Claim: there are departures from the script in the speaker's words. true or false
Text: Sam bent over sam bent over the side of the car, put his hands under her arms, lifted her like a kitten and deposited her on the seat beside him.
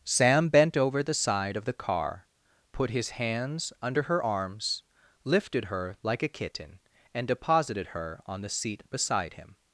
true